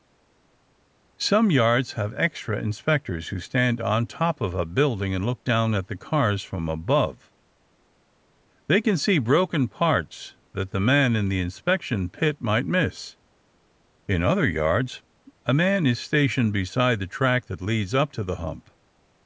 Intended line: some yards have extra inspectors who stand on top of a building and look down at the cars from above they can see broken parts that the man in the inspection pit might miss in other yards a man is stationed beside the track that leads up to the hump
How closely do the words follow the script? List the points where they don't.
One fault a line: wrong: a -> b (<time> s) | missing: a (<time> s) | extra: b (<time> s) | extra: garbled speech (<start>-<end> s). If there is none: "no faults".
no faults